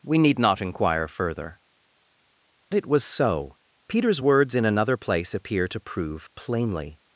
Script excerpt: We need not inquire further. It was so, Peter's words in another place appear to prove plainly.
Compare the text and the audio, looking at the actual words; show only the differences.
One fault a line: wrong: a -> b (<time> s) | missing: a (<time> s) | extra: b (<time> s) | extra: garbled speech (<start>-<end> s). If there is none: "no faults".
no faults